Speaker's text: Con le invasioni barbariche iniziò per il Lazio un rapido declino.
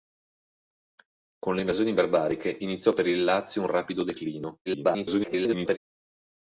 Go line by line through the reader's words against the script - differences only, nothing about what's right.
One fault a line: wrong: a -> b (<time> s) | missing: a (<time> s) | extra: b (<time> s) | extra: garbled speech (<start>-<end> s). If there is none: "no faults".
extra: garbled speech (4.7-5.8 s)